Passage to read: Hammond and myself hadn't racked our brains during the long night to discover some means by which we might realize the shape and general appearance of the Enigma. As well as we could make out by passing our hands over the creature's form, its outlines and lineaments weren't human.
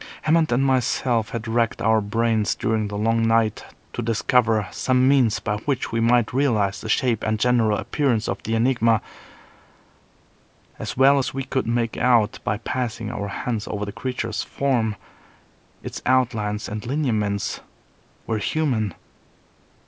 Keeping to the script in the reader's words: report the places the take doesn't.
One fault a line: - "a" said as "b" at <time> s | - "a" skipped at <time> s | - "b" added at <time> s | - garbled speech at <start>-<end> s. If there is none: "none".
- "hadn't" said as "had" at 1.3 s
- "weren't" said as "were" at 18.3 s